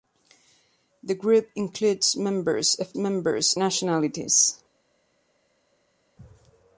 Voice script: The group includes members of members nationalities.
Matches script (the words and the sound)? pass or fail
pass